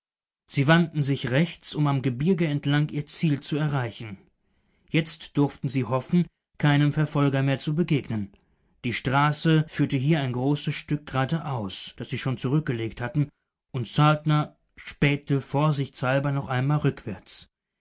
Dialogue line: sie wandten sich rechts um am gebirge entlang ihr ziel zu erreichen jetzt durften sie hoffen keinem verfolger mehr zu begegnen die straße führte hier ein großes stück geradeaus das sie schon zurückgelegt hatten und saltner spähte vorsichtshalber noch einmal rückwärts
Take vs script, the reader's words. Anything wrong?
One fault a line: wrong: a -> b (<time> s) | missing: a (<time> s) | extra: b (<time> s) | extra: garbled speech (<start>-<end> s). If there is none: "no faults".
no faults